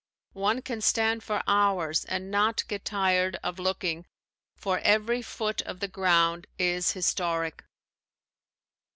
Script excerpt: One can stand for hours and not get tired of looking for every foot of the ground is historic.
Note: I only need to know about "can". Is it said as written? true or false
true